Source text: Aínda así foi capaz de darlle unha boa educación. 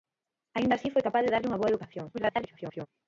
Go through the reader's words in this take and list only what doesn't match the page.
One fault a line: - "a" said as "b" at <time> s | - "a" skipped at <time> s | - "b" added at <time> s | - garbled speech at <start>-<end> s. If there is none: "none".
- garbled speech at 2.1-2.9 s